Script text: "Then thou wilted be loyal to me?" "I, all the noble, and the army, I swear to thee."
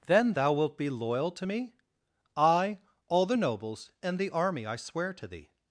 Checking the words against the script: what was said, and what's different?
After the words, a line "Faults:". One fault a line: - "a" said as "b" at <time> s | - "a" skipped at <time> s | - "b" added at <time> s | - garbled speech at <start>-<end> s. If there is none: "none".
"Then thou wilt be loyal to me?" "I, all the nobles, and the army, I swear to thee."
Faults:
- "wilted" said as "wilt" at 0.5 s
- "noble" said as "nobles" at 3.3 s